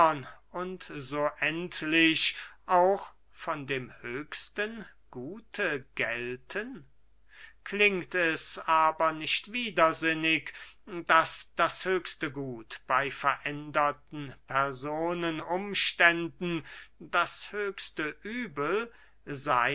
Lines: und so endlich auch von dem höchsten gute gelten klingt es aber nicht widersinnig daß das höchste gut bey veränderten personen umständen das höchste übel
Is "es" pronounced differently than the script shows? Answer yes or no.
no